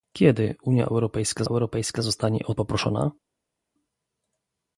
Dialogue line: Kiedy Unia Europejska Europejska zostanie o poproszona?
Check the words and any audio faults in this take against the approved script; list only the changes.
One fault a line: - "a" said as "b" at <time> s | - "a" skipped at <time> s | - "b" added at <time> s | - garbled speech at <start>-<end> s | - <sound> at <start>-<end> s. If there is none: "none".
none